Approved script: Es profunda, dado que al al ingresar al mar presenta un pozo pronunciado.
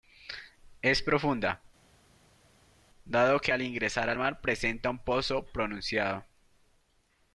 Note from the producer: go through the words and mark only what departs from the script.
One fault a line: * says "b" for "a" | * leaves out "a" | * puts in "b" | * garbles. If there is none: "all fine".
* leaves out "al"